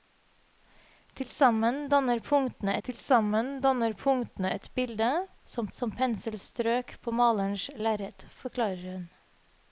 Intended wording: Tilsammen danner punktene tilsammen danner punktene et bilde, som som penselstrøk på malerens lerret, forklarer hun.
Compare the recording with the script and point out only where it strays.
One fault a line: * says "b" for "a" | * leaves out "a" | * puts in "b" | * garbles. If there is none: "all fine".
all fine